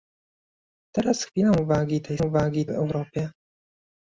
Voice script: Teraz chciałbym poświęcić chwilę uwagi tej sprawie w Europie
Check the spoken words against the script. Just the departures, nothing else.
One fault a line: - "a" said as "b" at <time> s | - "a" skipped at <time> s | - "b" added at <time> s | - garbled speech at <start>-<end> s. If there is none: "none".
- "chciałbym poświęcić" skipped at 1.2 s
- "sprawie" said as "uwagi" at 2.2 s